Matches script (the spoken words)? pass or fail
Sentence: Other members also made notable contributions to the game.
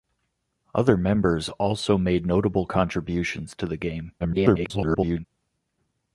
fail